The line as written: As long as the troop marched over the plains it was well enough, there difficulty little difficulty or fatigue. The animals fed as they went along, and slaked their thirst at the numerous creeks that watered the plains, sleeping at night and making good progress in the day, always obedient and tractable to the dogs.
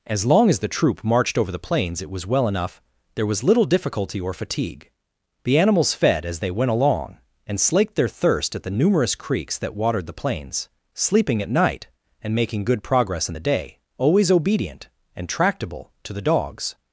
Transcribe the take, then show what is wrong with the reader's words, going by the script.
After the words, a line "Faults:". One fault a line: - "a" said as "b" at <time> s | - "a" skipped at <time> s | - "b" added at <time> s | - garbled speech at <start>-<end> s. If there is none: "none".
As long as the troop marched over the plains it was well enough, there was little difficulty or fatigue. The animals fed as they went along, and slaked their thirst at the numerous creeks that watered the plains, sleeping at night and making good progress in the day, always obedient and tractable to the dogs.
Faults:
- "difficulty" said as "was" at 3.2 s